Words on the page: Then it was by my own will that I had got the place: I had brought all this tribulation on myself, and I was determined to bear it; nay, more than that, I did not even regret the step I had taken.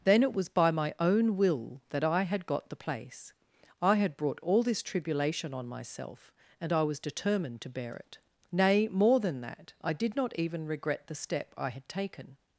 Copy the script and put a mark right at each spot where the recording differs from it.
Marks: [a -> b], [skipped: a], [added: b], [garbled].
Then it was by my own will that I had got the place: I had brought all this tribulation on myself, and I was determined to bear it; nay, more than that, I did not even regret the step I had taken.